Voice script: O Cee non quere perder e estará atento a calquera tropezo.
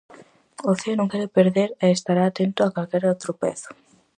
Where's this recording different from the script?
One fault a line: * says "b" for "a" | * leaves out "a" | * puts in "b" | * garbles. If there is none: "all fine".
all fine